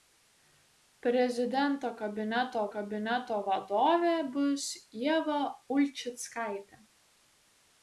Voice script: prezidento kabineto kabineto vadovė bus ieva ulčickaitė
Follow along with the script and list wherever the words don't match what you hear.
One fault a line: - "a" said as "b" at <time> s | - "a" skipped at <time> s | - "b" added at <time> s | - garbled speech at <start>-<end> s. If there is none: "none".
none